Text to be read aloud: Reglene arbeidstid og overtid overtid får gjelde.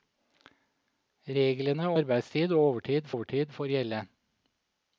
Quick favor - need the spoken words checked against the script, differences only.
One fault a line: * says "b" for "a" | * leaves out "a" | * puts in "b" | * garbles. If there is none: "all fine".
all fine